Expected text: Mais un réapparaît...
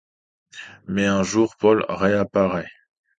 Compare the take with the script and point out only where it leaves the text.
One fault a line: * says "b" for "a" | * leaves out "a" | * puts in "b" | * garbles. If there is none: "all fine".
* puts in "jour Paul"